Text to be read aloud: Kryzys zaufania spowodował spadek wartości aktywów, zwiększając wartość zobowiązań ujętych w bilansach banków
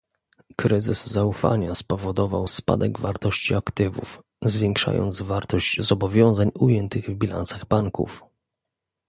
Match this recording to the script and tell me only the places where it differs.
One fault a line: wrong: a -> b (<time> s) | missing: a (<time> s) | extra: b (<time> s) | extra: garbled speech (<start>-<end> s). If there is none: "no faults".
no faults